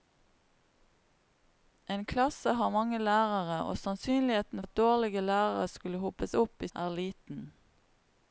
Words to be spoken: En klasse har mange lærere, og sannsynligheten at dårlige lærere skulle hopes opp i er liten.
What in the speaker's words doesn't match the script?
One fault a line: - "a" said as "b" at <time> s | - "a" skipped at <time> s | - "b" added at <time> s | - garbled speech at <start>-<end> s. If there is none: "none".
none